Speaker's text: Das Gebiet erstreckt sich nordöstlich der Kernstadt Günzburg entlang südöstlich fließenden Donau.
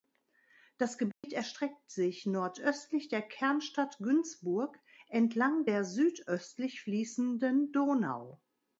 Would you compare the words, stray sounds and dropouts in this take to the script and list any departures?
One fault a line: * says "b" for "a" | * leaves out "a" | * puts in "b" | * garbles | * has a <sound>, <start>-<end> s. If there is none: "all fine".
* has a dropout, 1.1-1.2 s
* puts in "der"